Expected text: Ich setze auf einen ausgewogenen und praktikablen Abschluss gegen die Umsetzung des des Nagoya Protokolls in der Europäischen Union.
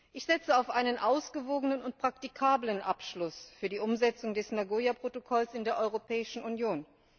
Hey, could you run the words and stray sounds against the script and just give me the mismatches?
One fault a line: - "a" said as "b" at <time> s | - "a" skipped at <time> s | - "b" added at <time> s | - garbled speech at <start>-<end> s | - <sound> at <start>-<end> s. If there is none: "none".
- "gegen" said as "für" at 3.6 s
- "des" skipped at 4.5 s